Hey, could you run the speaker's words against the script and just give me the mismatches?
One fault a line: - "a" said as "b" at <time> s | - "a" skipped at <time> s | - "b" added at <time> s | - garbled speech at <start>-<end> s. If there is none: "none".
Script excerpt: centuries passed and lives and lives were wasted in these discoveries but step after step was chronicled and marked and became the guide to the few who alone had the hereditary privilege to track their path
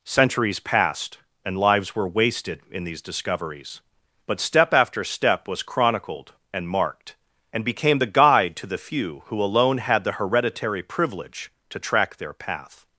- "and lives" skipped at 1.9 s